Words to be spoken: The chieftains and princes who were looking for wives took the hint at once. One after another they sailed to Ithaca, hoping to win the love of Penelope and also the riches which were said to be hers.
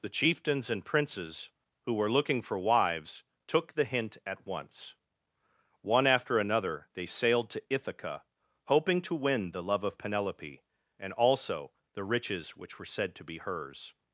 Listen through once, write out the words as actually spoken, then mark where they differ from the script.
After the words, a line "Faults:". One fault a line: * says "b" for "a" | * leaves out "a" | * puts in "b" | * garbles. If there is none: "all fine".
The chieftains and princes who were looking for wives took the hint at once. One after another they sailed to Ithaca, hoping to win the love of Penelope and also the riches which were said to be hers.
Faults:
all fine